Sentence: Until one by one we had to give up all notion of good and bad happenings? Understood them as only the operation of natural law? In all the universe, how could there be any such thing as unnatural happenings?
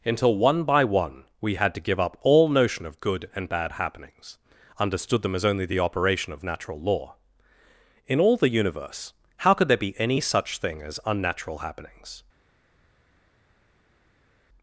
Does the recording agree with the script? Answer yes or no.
yes